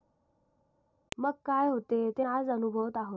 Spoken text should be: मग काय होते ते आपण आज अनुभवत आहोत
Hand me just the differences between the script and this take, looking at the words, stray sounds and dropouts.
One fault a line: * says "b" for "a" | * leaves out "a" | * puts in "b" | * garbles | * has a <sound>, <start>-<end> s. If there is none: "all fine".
* leaves out "आपण"